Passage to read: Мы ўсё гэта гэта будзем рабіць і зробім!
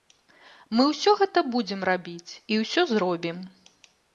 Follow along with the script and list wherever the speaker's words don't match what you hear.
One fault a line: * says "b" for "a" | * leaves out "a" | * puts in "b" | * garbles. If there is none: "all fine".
* leaves out "гэта"
* puts in "ўсё"